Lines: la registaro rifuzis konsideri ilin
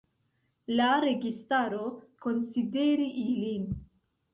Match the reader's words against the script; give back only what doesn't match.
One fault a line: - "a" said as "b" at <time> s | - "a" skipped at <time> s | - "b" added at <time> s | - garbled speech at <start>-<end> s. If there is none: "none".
- "rifuzis" skipped at 1.8 s